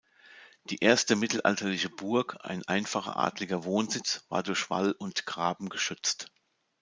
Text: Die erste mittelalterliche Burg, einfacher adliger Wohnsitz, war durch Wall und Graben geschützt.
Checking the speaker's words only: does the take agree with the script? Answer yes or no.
no